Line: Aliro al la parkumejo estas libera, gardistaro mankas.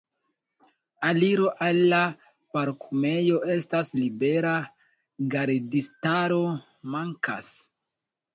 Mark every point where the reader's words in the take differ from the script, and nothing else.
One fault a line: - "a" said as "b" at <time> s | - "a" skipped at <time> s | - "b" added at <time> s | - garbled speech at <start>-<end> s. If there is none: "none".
none